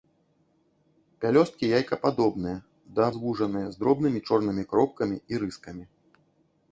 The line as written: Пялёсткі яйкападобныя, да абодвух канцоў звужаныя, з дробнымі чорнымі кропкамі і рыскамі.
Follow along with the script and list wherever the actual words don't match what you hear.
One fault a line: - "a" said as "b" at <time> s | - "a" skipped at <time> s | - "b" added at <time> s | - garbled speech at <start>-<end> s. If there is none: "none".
- "абодвух канцоў" skipped at 3.1 s